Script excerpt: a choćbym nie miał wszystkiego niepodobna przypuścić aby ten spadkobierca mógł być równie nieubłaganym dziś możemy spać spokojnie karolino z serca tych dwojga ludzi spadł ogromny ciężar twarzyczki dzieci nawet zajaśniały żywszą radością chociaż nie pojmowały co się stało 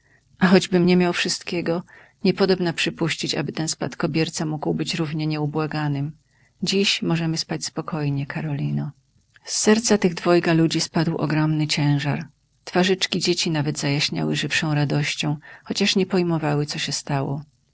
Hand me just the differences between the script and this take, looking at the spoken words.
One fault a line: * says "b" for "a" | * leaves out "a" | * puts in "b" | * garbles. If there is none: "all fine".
all fine